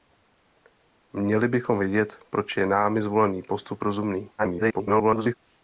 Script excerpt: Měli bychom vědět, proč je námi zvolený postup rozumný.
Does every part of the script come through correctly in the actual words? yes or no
no